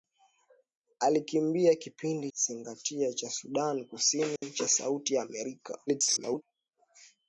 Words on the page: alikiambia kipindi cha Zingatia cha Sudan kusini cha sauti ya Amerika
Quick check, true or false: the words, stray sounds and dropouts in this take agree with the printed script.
false